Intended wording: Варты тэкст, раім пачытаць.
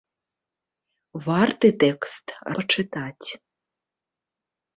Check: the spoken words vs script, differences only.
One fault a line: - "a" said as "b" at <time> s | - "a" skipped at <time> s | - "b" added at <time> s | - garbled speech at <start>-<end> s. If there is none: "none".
- "раім" skipped at 2.2 s